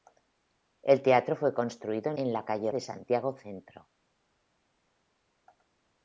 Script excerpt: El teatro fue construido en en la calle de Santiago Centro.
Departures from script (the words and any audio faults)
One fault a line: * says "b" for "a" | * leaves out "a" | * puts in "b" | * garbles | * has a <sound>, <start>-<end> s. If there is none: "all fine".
all fine